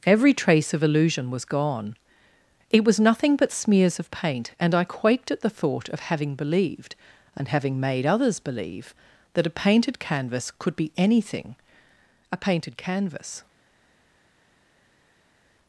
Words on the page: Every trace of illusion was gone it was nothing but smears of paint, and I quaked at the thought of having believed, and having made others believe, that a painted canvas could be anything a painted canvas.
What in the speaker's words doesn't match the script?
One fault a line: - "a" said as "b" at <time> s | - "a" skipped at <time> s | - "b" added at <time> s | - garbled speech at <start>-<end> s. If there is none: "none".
none